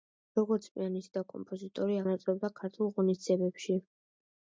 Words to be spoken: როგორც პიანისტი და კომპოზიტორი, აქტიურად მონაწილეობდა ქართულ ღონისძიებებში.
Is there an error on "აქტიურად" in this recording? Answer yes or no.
yes